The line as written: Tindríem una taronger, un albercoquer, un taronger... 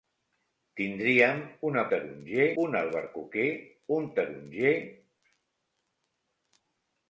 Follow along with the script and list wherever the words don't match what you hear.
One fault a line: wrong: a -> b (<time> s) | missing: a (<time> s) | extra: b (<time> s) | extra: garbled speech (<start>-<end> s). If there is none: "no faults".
no faults